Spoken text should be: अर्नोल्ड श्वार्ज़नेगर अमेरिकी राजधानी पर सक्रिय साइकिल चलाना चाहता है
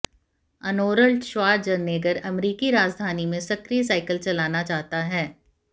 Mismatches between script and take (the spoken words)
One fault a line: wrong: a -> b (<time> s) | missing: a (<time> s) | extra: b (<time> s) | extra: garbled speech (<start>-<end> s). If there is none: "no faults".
wrong: पर -> में (3.3 s)